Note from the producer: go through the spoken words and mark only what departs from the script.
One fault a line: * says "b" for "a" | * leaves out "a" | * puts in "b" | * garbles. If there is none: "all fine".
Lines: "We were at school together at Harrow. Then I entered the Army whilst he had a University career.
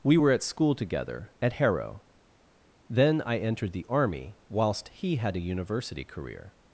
all fine